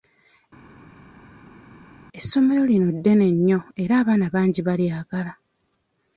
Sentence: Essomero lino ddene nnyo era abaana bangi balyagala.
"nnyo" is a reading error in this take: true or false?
false